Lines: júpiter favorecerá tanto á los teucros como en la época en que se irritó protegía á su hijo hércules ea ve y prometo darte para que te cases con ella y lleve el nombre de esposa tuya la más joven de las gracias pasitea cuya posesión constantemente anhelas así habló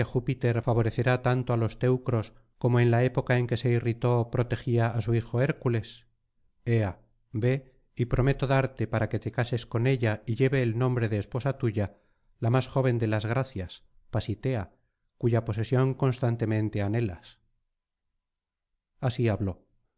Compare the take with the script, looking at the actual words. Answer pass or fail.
pass